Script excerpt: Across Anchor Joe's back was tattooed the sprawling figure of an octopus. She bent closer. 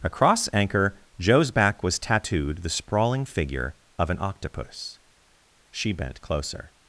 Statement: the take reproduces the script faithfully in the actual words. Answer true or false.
true